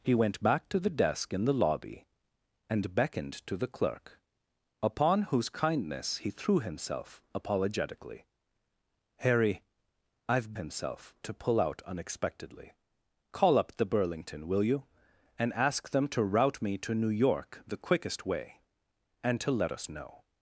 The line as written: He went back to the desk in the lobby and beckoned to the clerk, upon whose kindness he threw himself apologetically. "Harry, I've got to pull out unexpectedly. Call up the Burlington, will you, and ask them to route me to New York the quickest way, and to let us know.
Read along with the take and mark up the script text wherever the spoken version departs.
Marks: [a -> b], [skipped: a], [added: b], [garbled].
He went back to the desk in the lobby and beckoned to the clerk, upon whose kindness he threw himself apologetically. "Harry, I've [got -> himself] to pull out unexpectedly. Call up the Burlington, will you, and ask them to route me to New York the quickest way, and to let us know.